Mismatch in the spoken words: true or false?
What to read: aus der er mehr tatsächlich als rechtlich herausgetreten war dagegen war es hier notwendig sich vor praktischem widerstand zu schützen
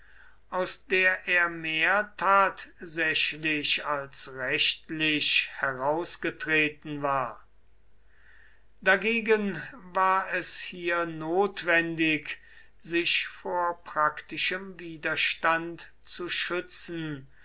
false